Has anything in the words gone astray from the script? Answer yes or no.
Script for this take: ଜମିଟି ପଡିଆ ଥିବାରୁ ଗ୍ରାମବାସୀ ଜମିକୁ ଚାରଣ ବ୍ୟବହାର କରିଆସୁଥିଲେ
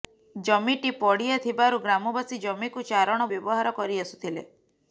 no